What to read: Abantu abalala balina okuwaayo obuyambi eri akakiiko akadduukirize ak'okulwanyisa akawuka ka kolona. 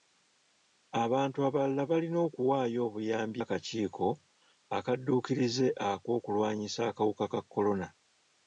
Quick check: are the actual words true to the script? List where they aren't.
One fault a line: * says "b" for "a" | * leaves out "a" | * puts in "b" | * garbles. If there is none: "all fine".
* leaves out "eri"